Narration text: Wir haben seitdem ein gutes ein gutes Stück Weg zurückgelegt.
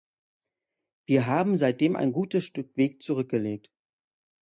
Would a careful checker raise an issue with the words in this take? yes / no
yes